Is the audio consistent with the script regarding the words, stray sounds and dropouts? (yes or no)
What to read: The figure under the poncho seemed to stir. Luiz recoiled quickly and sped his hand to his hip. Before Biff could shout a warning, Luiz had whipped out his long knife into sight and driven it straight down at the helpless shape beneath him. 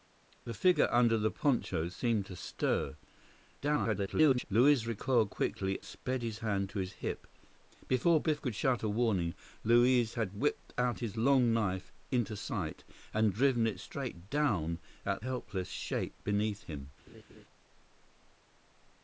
no